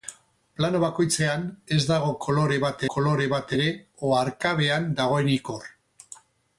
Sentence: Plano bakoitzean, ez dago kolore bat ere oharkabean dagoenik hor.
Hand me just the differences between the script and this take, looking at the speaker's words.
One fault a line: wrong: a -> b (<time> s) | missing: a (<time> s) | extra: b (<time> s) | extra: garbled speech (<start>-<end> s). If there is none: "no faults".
extra: kolore bat (2.9 s)